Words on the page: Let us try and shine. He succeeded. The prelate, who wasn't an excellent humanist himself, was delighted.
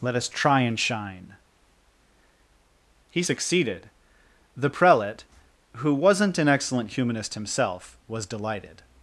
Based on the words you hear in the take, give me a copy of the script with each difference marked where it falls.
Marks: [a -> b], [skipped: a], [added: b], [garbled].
Let us try and shine. He succeeded. The prelate, who wasn't an excellent humanist himself, was delighted.